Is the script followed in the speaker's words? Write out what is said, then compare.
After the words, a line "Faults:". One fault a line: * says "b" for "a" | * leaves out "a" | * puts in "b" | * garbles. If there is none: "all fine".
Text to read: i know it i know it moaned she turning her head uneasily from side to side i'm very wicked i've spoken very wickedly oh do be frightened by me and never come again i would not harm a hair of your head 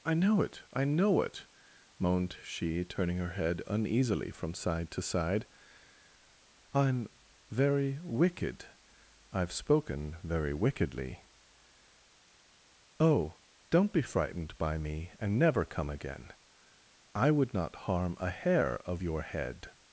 i know it i know it moaned she turning her head uneasily from side to side i'm very wicked i've spoken very wickedly oh don't be frightened by me and never come again i would not harm a hair of your head
Faults:
* says "don't" for "do"